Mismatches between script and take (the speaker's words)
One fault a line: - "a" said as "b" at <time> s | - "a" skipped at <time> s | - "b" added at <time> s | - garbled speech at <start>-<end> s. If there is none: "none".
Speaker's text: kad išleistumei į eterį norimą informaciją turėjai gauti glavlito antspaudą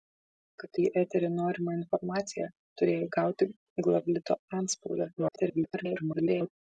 - "išleistumei" skipped at 0.8 s
- garbled speech at 5.2-6.5 s